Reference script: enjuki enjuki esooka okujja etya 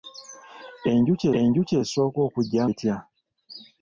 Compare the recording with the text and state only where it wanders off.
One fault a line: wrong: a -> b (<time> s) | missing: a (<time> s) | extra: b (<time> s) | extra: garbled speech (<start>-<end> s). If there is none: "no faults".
no faults